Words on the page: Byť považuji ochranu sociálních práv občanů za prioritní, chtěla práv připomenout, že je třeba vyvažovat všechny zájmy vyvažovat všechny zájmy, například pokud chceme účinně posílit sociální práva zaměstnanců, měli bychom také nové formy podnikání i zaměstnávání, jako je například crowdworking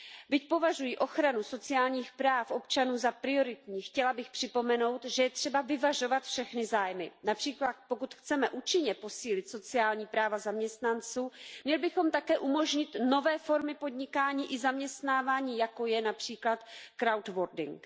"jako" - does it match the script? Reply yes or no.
yes